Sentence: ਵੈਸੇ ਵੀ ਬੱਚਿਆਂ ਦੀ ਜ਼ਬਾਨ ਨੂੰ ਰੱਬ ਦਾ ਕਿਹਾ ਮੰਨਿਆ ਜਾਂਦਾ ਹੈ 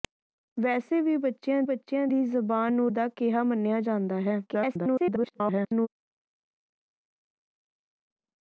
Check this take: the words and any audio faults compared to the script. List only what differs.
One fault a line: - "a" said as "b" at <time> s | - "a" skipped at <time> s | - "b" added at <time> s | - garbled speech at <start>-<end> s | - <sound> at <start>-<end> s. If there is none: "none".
- "ਬੱਚਿਆਂ" added at 1.6 s
- "ਰੱਬ" skipped at 2.9 s
- garbled speech at 4.5-5.9 s